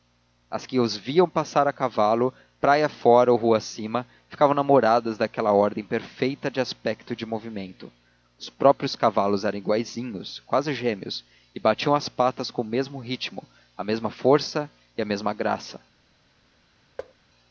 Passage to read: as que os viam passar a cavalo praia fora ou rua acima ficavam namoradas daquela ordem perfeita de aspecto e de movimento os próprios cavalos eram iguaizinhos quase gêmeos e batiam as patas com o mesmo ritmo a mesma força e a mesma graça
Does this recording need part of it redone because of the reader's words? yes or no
no